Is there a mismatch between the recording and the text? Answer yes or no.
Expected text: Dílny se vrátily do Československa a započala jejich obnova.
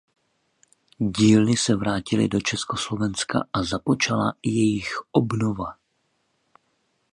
no